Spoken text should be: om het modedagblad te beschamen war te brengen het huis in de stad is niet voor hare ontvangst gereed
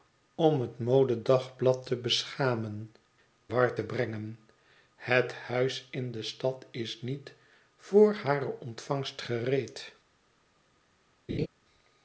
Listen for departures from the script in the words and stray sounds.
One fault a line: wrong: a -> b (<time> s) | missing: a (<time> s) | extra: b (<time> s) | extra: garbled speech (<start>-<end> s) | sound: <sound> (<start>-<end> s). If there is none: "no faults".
sound: laugh (11.3-11.5 s)